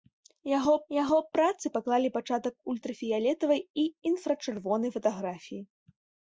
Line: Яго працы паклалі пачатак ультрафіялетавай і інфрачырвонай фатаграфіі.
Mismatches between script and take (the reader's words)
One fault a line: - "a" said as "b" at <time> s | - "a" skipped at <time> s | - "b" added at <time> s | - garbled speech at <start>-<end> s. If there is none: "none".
- "яго" added at 1.0 s